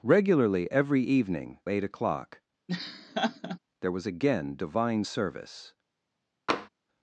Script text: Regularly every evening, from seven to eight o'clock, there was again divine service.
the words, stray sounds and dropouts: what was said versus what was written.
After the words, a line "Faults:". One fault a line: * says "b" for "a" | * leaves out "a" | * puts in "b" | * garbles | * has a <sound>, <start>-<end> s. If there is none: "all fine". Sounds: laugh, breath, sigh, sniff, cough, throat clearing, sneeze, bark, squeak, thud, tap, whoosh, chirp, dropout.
Regularly every evening, eight o'clock, there was again divine service.
Faults:
* leaves out "from seven to"
* has a laugh, 2.7-3.6 s
* has a tap, 6.5-6.7 s